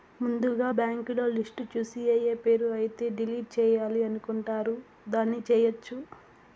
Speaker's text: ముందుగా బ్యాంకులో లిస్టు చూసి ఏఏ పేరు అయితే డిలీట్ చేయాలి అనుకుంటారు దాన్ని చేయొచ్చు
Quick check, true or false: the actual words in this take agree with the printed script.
true